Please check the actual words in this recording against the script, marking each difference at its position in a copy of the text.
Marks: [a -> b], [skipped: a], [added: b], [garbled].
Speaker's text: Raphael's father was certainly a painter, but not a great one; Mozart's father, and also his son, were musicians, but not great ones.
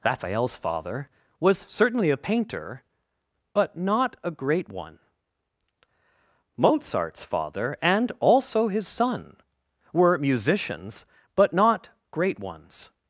Raphael's father was certainly a painter, but not a great one; Mozart's father, and also his son, were musicians, but not great ones.